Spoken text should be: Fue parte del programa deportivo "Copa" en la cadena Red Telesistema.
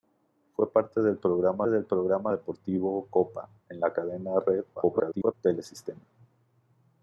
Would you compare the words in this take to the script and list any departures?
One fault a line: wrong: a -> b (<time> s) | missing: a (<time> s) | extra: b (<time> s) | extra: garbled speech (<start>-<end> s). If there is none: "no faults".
extra: del programa (1.7 s)
extra: garbled speech (4.7-5.3 s)